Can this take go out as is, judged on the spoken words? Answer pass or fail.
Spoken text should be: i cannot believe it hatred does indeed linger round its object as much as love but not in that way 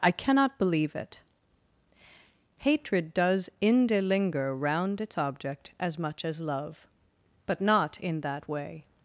fail